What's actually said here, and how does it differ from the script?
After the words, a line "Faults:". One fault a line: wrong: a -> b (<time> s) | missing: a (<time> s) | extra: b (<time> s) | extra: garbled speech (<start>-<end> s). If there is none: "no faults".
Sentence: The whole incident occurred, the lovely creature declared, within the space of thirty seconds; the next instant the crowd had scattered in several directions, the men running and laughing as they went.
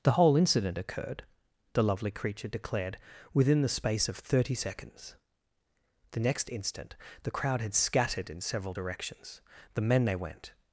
The whole incident occurred, the lovely creature declared, within the space of thirty seconds; the next instant the crowd had scattered in several directions, the men they went.
Faults:
missing: running and laughing as (10.0 s)